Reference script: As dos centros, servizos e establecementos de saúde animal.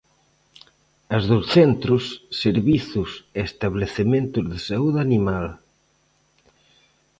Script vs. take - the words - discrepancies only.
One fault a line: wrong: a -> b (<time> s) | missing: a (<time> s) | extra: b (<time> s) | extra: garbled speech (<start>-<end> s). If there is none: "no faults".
no faults